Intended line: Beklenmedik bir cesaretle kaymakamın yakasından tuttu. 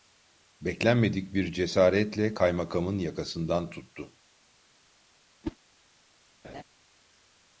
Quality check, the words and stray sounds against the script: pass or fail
fail